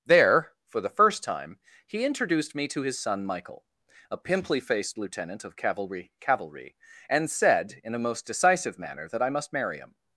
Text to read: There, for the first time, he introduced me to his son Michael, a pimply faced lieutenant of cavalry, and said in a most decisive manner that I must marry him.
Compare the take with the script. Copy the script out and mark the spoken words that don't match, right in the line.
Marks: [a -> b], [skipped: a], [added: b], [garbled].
There, for the first time, he introduced me to his son Michael, a pimply faced lieutenant of cavalry, [added: cavalry] and said in a most decisive manner that I must marry him.